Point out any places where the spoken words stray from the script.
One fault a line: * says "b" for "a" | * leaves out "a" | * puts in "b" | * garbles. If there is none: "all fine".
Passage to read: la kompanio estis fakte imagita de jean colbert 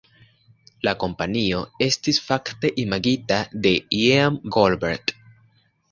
all fine